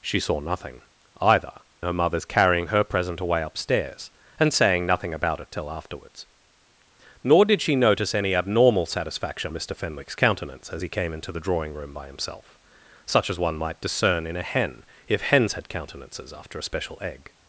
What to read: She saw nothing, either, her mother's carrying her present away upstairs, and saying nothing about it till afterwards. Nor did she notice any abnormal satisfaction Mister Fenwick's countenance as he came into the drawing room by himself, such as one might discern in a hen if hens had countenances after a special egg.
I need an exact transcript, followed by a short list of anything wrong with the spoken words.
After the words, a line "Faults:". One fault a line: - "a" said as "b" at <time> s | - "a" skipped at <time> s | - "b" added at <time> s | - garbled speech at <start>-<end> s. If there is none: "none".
She saw nothing, either, her mother's carrying her present away upstairs, and saying nothing about it till afterwards. Nor did she notice any abnormal satisfaction Mister Fenwick's countenance as he came into the drawing room by himself, such as one might discern in a hen if hens had countenances after a special egg.
Faults:
none